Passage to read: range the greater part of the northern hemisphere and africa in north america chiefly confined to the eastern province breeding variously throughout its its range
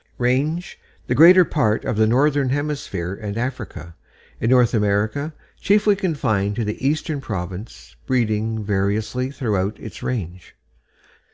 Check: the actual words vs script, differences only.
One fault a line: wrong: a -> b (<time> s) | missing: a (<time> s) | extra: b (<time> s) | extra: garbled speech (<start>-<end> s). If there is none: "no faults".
missing: its (10.0 s)